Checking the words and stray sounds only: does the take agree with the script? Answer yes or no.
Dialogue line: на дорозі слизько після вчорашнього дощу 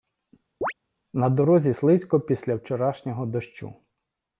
no